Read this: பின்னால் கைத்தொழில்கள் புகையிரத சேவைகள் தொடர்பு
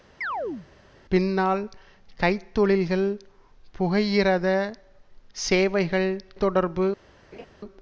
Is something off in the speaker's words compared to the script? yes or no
no